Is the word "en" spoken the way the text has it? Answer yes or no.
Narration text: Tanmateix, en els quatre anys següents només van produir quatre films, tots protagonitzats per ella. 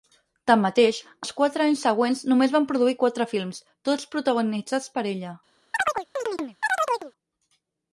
no